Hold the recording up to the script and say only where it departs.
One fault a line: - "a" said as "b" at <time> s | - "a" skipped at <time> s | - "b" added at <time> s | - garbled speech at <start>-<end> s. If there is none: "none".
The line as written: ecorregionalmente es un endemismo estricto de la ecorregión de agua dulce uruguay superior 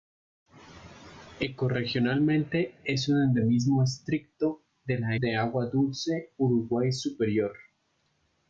- "ecorregión" skipped at 5.2 s